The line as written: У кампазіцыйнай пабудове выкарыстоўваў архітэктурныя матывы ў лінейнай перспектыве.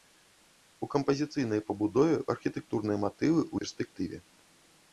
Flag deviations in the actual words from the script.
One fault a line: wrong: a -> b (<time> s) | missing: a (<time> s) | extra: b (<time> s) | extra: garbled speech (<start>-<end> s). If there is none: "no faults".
missing: выкарыстоўваў (2.1 s)
missing: лінейнай (3.6 s)